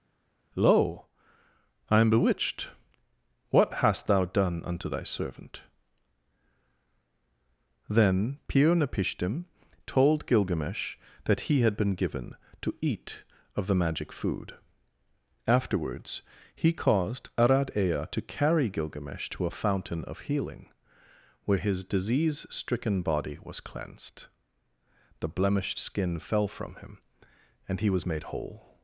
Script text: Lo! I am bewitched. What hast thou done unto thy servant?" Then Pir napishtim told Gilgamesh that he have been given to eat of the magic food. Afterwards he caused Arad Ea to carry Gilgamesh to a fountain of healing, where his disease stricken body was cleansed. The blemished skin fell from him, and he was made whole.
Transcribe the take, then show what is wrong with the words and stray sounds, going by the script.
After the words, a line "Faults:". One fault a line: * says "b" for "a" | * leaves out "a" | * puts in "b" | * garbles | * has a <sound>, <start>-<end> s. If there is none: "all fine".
Lo! I am bewitched. What hast thou done unto thy servant?" Then Pir napishtim told Gilgamesh that he had been given to eat of the magic food. Afterwards he caused Arad Ea to carry Gilgamesh to a fountain of healing, where his disease stricken body was cleansed. The blemished skin fell from him, and he was made whole.
Faults:
* says "had" for "have"